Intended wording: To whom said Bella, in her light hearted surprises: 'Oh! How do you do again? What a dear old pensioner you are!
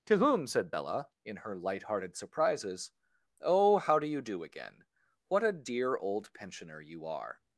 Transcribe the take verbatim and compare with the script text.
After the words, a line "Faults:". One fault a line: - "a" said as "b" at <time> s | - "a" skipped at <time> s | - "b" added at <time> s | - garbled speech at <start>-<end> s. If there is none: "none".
To whom said Bella, in her light hearted surprises: 'Oh! How do you do again? What a dear old pensioner you are!
Faults:
none